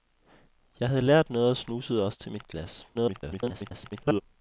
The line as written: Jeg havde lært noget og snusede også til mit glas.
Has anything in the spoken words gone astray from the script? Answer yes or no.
yes